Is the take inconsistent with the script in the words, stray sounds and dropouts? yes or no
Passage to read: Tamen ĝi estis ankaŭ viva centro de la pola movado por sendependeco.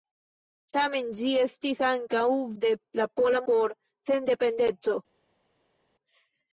yes